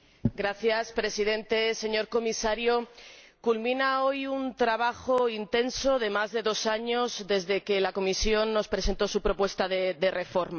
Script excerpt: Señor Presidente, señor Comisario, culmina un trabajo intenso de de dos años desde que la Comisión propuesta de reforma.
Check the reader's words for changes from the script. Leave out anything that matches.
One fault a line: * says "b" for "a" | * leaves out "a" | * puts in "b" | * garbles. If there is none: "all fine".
* puts in "hoy"
* puts in "más"
* puts in "nos presentó su"